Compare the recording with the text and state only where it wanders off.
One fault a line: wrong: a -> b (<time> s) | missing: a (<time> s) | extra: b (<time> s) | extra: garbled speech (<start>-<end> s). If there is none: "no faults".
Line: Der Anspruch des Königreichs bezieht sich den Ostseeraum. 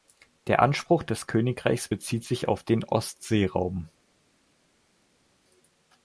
extra: auf (2.5 s)